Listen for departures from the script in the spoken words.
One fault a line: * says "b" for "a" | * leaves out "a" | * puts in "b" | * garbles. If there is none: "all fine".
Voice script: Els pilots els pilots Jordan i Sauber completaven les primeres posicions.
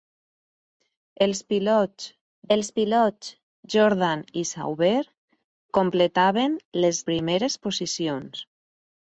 all fine